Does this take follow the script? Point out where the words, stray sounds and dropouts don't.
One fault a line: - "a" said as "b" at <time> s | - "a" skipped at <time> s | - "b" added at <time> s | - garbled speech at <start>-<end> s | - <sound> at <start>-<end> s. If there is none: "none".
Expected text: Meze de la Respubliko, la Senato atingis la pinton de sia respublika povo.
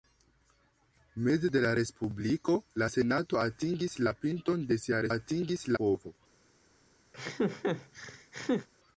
- "respublika" said as "atingis" at 5.1 s
- laugh at 7.1-8.7 s